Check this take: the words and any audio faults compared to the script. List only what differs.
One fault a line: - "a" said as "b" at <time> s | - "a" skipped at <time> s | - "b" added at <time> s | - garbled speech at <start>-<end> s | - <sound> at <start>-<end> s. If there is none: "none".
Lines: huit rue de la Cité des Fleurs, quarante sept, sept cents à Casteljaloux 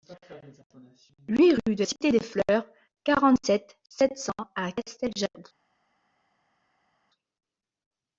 - "la" skipped at 1.8 s